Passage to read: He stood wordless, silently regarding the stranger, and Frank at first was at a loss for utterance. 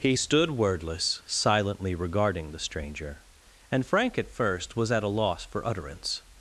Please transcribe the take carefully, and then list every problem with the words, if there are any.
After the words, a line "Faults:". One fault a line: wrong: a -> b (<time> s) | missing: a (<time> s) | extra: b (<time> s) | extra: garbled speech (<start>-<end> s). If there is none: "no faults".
He stood wordless, silently regarding the stranger, and Frank at first was at a loss for utterance.
Faults:
no faults